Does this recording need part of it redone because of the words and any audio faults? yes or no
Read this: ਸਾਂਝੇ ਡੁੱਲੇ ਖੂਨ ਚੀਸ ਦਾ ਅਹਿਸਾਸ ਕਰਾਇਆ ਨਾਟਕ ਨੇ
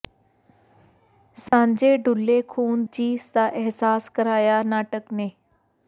yes